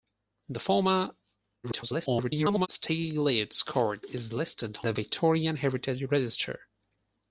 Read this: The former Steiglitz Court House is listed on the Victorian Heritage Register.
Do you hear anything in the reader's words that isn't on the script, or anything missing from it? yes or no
yes